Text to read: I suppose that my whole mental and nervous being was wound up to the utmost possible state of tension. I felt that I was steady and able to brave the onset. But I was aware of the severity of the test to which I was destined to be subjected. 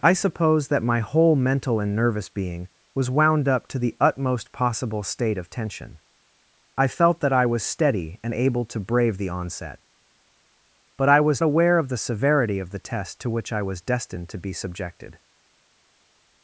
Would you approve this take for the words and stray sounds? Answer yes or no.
yes